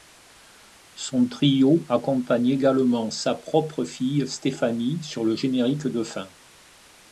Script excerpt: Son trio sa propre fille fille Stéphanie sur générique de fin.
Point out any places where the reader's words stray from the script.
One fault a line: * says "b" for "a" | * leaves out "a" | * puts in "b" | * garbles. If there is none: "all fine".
* puts in "accompagne également"
* leaves out "fille"
* puts in "le"